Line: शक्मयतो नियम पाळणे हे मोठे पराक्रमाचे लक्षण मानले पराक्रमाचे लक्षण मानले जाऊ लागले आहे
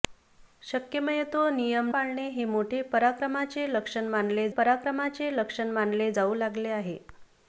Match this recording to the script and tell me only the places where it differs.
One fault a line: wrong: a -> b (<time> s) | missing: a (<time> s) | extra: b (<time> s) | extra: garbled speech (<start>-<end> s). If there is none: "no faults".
no faults